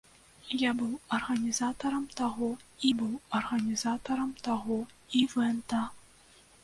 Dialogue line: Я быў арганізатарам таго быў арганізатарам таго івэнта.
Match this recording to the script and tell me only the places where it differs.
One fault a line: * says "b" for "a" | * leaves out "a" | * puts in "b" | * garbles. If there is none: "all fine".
all fine